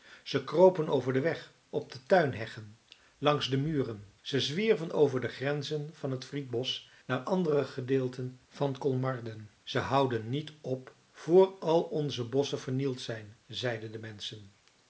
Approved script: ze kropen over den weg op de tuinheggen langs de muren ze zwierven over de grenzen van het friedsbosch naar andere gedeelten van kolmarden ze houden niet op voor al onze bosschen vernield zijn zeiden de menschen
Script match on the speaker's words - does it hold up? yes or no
yes